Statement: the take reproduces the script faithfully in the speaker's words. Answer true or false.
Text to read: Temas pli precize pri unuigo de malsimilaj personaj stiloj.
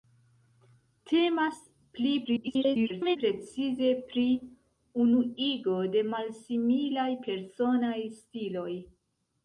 false